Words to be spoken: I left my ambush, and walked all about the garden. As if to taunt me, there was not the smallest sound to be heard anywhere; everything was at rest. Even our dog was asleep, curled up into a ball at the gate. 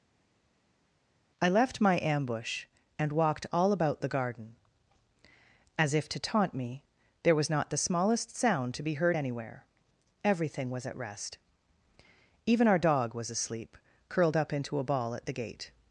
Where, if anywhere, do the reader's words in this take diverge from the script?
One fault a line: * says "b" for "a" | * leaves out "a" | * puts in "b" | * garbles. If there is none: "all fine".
all fine